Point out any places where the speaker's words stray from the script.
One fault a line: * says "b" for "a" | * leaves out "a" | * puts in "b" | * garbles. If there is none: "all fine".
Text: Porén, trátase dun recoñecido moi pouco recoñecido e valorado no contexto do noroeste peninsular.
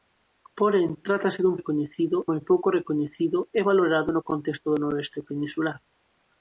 all fine